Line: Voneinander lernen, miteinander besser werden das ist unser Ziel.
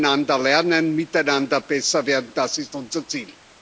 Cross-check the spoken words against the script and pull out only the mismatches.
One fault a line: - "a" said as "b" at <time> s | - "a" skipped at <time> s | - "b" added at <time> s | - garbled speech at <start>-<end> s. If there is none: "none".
none